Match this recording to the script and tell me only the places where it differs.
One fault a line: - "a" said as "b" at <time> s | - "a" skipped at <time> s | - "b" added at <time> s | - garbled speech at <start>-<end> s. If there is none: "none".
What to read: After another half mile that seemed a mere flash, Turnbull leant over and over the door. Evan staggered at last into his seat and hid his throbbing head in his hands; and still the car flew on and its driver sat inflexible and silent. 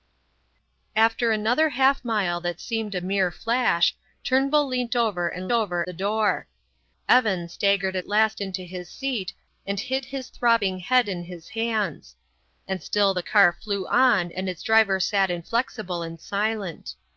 none